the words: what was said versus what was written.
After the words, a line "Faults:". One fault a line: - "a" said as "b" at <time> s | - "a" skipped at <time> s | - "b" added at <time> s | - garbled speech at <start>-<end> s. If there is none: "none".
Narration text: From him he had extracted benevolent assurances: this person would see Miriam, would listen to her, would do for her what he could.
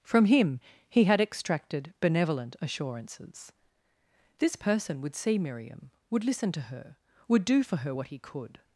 From him he had extracted benevolent assurances: this person would see Miriam, would listen to her, would do for her what he could.
Faults:
none